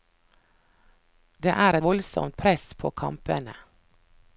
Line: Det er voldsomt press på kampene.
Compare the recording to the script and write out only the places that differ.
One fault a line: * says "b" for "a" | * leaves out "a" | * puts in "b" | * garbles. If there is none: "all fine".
all fine